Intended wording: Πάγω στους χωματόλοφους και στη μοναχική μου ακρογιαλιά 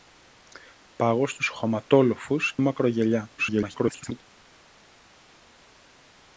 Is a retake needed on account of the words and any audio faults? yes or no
yes